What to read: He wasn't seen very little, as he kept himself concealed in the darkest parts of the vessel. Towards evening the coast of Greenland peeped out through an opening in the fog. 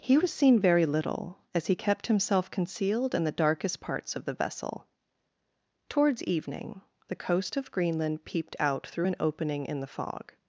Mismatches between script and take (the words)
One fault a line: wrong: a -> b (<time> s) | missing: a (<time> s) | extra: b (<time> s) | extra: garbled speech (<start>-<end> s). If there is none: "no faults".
wrong: wasn't -> was (0.2 s)